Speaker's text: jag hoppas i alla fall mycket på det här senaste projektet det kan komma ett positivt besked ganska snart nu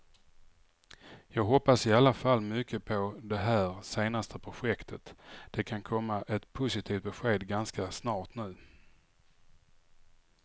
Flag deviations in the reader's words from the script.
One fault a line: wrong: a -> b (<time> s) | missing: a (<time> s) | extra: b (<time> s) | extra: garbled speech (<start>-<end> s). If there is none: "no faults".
no faults